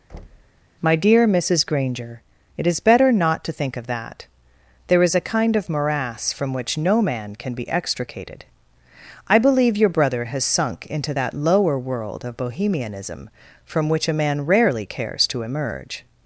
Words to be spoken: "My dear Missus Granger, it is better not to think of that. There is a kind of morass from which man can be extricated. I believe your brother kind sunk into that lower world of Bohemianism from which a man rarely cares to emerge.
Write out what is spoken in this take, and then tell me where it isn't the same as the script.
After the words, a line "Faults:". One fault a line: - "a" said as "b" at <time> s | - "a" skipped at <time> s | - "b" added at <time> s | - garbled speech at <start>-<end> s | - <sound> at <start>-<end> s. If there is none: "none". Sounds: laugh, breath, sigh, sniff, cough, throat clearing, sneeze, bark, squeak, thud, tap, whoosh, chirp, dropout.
"My dear Missus Granger, it is better not to think of that. There is a kind of morass from which no man can be extricated. I believe your brother has sunk into that lower world of Bohemianism from which a man rarely cares to emerge.
Faults:
- thud at 0.1-0.6 s
- "no" added at 6.8 s
- "kind" said as "has" at 10.2 s